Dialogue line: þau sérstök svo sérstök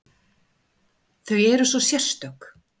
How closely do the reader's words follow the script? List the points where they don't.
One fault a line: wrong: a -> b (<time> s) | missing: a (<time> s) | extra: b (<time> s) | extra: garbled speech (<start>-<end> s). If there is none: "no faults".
wrong: sérstök -> eru (1.5 s)